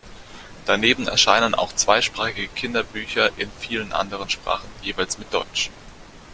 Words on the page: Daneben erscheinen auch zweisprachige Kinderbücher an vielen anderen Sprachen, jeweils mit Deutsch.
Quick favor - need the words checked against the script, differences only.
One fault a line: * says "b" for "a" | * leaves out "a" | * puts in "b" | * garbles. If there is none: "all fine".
* says "in" for "an"